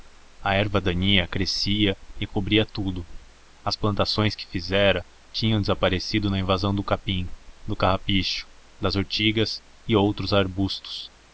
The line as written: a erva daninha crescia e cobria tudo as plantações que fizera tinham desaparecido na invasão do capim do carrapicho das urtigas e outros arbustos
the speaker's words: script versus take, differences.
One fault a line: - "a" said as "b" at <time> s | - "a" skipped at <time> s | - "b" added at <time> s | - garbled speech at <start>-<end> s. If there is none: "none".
none